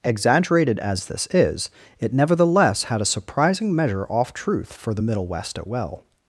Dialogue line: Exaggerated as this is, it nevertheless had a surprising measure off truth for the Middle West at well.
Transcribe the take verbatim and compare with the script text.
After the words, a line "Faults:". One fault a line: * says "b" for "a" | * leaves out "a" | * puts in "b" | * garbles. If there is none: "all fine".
Exaggerated as this is, it nevertheless had a surprising measure off truth for the Middle West at well.
Faults:
all fine